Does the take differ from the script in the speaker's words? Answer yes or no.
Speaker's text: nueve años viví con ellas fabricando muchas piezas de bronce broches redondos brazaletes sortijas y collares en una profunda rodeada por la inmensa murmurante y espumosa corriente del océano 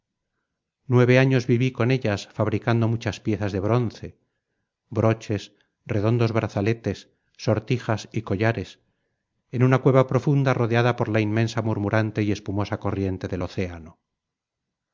yes